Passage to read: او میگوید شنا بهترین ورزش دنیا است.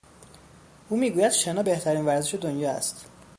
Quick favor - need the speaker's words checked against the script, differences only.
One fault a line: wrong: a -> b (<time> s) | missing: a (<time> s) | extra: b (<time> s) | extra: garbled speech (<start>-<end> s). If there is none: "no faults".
no faults